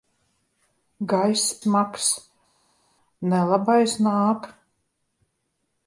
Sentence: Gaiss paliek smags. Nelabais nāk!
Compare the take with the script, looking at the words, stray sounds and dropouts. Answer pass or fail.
fail